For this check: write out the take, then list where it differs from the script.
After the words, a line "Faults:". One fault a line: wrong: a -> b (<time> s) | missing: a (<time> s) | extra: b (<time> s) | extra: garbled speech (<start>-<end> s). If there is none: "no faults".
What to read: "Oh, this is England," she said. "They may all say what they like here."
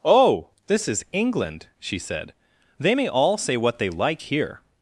"Oh, this is England," she said. "They may all say what they like here."
Faults:
no faults